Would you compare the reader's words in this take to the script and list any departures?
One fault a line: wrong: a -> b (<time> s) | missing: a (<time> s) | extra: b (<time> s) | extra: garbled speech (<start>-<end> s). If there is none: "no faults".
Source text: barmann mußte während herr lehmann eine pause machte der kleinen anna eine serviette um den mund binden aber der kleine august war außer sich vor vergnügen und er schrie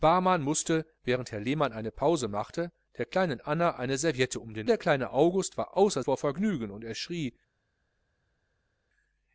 missing: mund binden aber (4.7 s)
missing: sich (6.0 s)